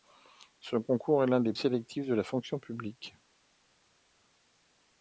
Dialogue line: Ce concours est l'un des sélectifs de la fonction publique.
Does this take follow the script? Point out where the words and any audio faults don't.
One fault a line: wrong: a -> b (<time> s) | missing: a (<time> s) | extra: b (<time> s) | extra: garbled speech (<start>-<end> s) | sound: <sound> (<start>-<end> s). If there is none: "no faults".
no faults